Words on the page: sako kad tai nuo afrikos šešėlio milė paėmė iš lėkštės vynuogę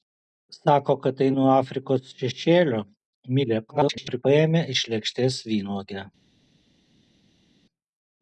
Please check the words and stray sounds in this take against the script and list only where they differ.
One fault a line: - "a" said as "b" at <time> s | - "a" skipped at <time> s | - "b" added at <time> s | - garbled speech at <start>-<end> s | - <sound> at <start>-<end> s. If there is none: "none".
- garbled speech at 3.7-4.2 s